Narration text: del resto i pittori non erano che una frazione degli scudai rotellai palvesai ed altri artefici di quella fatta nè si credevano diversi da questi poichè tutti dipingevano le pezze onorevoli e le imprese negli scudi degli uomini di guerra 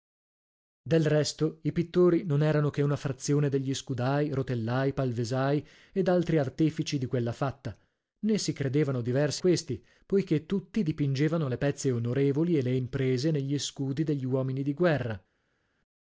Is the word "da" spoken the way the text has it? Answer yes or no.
no